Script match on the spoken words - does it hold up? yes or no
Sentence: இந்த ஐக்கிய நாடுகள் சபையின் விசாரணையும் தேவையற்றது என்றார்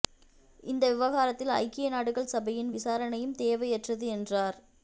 no